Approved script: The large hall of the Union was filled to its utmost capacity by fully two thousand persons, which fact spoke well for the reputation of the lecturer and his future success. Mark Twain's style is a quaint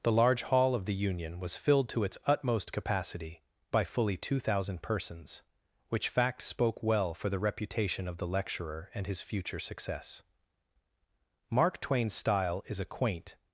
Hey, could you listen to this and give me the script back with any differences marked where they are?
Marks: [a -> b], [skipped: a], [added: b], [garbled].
The large hall of the Union was filled to its utmost capacity by fully two thousand persons, which fact spoke well for the reputation of the lecturer and his future success. Mark Twain's style is a quaint